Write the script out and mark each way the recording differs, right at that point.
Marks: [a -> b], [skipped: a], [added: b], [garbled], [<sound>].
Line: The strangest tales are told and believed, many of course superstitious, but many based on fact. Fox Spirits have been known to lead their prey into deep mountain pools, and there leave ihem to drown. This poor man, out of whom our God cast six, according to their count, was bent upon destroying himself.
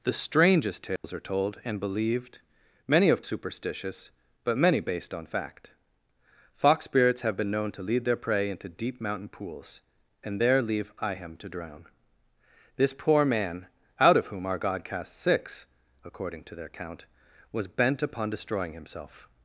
The strangest tales [dropout] are told and believed, many of [skipped: course] superstitious, but many based on fact. Fox Spirits have been known to lead their prey into deep mountain pools, and there leave ihem to drown. This poor man, out of whom our God cast six, according to their count, was bent upon destroying himself.